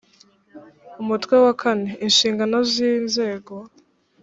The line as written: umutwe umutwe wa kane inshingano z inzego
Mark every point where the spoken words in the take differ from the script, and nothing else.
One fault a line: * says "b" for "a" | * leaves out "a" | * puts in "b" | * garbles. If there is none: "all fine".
* leaves out "umutwe"